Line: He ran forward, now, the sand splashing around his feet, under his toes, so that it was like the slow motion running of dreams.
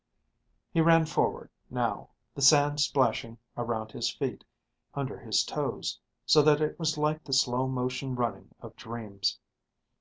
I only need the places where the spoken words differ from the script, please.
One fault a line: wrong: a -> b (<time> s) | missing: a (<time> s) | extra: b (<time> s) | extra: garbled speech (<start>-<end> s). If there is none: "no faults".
no faults